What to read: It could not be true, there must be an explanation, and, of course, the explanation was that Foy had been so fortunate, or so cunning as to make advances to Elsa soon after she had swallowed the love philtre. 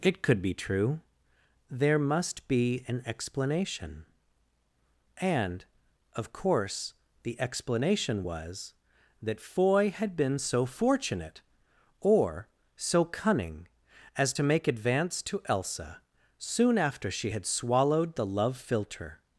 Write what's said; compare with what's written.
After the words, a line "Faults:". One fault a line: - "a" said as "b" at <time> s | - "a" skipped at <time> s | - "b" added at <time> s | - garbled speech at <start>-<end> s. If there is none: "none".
It could be true, there must be an explanation, and, of course, the explanation was that Foy had been so fortunate, or so cunning as to make advance to Elsa soon after she had swallowed the love philtre.
Faults:
- "not" skipped at 0.4 s
- "advances" said as "advance" at 14.7 s